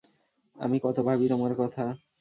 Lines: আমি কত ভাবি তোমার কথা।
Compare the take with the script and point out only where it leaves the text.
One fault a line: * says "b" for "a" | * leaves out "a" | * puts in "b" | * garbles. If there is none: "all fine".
all fine